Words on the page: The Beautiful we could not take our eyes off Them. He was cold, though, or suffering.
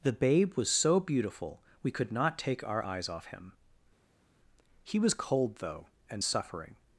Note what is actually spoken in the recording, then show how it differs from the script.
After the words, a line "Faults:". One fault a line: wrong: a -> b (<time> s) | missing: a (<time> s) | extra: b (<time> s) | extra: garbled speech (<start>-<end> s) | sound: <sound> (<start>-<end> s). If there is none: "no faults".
The Babe was so beautiful we could not take our eyes off Him. He was cold, though, and suffering.
Faults:
extra: Babe was so (0.1 s)
wrong: Them -> Him (3.3 s)
wrong: or -> and (6.1 s)